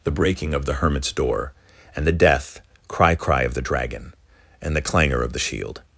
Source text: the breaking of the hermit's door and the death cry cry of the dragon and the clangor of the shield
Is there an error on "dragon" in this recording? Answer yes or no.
no